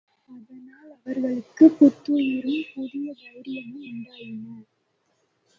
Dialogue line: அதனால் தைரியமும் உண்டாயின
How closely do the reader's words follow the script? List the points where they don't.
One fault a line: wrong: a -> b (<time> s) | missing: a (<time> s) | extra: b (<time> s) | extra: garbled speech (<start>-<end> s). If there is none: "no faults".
extra: அவர்களுக்குப் புத்துயிரும் புதிய (0.9 s)